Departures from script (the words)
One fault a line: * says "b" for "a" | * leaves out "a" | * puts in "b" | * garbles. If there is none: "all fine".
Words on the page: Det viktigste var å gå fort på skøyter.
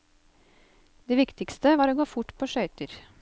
all fine